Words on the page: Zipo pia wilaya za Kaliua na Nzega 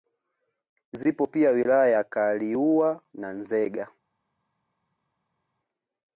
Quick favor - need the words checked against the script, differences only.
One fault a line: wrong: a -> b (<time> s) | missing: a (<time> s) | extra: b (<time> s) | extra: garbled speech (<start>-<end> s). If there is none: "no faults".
no faults